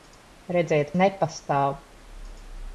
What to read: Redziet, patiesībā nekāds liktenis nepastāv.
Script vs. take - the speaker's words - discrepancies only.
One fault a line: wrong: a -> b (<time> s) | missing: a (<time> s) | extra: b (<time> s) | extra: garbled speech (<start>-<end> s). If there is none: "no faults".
missing: patiesībā nekāds liktenis (0.9 s)